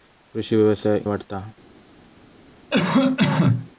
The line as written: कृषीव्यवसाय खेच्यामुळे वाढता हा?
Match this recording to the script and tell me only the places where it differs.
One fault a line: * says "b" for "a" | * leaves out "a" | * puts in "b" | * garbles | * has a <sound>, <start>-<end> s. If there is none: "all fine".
* leaves out "खेच्यामुळे"
* has a cough, 2.7-3.7 s